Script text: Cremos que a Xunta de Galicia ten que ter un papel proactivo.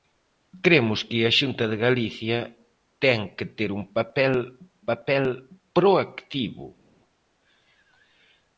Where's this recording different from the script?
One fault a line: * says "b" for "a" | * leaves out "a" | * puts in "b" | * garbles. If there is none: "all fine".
* puts in "papel"